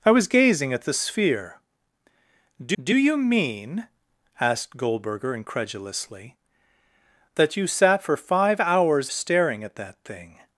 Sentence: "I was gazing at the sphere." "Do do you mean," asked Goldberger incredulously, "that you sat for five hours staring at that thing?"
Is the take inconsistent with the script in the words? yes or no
no